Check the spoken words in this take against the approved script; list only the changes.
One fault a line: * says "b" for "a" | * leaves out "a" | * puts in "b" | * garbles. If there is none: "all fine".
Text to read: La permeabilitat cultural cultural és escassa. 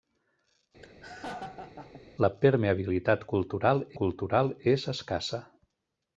all fine